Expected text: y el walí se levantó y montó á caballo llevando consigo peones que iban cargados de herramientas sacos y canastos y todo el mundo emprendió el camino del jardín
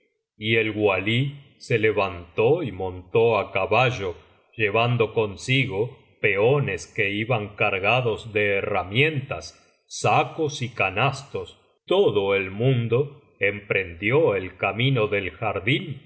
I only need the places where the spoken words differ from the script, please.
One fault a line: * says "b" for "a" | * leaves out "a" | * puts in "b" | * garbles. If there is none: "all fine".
* leaves out "y"